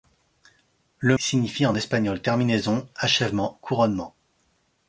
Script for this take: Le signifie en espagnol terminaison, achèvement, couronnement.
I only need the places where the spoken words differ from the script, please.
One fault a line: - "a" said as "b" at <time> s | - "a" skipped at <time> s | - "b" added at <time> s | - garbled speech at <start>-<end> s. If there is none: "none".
none